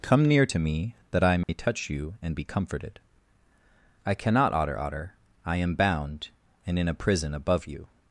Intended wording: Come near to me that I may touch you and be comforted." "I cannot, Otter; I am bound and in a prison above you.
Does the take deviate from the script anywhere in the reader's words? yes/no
yes